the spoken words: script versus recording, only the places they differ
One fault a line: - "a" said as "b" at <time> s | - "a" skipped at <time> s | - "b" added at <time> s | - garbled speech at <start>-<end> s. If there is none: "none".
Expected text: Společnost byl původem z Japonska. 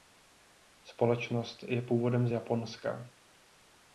- "byl" said as "je" at 1.6 s